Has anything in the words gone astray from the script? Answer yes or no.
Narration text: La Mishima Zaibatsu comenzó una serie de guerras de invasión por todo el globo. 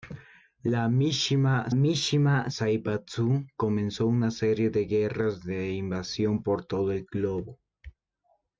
yes